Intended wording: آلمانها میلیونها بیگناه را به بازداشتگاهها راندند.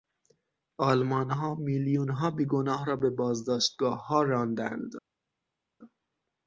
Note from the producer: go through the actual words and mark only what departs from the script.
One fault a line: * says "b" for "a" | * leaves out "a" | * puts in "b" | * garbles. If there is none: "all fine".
all fine